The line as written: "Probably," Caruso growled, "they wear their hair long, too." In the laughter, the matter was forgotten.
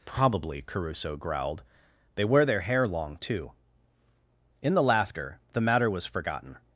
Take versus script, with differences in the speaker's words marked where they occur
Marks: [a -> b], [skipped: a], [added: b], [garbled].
"Probably," Caruso growled, "they wear their hair long, too." In the laughter, the matter was forgotten.